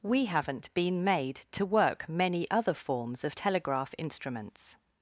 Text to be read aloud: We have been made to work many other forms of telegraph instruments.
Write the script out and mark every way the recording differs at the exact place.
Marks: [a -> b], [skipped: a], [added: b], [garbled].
We [have -> haven't] been made to work many other forms of telegraph instruments.